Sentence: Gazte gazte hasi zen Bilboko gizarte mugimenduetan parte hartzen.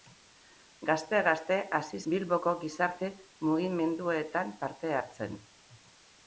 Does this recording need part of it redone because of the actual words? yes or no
yes